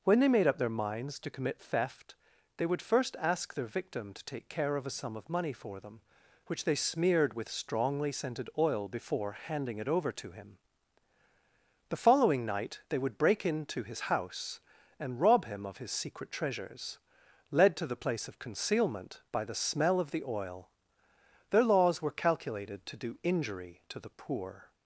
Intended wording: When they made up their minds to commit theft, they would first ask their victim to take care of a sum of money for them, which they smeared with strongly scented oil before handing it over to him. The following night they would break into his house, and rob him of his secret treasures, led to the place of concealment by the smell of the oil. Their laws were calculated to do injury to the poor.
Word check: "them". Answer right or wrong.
right